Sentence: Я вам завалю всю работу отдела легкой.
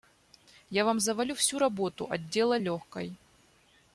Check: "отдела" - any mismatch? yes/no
no